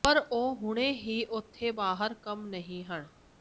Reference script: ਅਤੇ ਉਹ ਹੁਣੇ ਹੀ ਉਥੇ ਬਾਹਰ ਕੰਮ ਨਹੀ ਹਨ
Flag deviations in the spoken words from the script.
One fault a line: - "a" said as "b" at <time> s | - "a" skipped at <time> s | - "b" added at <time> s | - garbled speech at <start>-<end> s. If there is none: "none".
- "ਅਤੇ" said as "ਪਰ" at 0.0 s